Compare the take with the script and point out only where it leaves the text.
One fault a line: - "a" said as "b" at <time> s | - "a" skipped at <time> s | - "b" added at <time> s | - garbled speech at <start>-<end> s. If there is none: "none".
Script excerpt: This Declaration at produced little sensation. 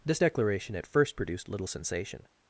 - "first" added at 0.9 s